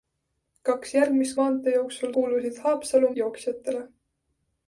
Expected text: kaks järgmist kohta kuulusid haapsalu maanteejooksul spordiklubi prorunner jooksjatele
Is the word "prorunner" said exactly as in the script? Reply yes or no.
no